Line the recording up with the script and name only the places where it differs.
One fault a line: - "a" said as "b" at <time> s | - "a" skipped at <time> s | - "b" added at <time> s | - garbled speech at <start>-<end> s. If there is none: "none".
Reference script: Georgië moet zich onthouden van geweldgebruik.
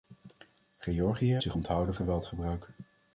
- "moet" skipped at 1.4 s
- "van" skipped at 1.9 s